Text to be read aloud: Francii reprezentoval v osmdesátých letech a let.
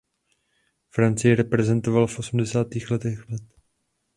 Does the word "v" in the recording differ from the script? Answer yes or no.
no